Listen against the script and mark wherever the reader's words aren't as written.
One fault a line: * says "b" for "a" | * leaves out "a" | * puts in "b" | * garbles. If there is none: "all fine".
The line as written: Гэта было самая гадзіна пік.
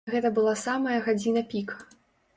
* says "была" for "было"